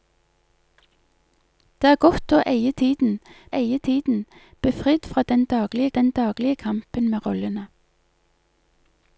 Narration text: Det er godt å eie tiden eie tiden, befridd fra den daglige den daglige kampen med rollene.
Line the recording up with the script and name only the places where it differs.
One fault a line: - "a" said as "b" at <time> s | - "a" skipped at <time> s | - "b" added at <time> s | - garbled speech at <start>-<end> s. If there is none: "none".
none